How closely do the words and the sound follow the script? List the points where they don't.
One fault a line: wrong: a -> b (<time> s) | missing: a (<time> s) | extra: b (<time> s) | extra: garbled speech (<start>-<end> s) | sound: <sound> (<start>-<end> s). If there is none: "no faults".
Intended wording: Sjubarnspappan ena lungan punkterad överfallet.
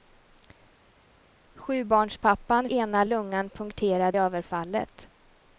no faults